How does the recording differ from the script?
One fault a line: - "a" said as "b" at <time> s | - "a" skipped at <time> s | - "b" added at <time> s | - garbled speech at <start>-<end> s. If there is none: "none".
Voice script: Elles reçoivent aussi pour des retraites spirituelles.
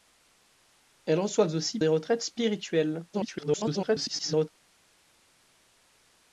- "pour" skipped at 1.8 s
- garbled speech at 3.1-4.5 s